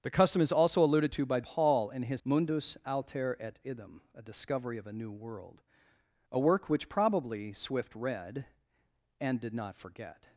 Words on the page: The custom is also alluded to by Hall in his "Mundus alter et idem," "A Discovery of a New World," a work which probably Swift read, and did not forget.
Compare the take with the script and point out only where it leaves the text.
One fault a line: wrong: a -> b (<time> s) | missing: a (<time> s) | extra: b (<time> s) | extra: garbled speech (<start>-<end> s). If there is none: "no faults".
no faults